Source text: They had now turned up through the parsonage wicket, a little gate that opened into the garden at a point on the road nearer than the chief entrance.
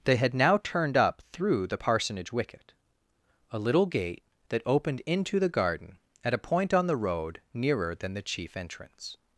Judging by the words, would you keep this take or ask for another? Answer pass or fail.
pass